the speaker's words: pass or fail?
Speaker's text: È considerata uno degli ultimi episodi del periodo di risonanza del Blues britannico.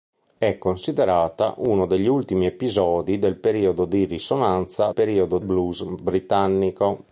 fail